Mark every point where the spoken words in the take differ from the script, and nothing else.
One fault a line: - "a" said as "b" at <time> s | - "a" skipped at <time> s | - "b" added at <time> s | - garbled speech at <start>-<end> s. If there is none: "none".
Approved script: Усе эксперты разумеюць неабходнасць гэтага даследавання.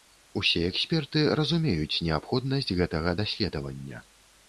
none